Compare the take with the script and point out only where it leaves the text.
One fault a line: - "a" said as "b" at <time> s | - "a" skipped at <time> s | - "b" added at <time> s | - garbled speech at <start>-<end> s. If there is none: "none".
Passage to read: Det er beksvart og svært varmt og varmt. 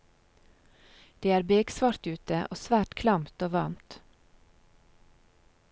- "ute" added at 2.1 s
- "varmt" said as "klamt" at 3.0 s